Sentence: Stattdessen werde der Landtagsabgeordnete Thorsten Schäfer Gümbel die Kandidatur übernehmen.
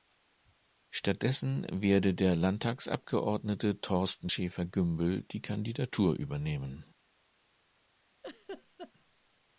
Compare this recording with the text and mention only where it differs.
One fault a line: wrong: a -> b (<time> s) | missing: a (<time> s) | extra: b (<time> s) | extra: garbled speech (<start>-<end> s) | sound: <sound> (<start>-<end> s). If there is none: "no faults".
sound: laugh (8.2-8.9 s)